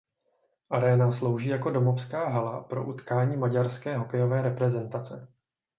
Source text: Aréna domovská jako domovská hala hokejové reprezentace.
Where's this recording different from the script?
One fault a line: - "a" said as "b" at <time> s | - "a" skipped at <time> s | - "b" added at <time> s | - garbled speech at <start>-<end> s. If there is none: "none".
- "domovská" said as "slouží" at 1.1 s
- "pro utkání maďarské" added at 2.6 s